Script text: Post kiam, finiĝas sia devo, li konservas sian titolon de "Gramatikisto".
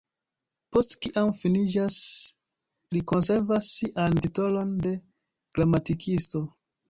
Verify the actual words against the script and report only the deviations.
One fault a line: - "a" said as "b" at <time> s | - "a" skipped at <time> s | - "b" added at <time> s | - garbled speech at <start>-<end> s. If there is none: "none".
- "sia devo" skipped at 2.0 s